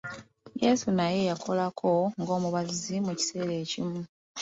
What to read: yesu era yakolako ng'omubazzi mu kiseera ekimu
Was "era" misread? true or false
true